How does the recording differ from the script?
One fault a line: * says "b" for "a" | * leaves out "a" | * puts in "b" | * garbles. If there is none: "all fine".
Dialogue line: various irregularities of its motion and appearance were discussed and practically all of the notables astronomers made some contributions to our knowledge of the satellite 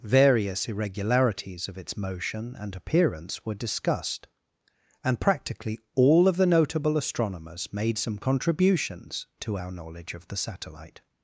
* says "notable" for "notables"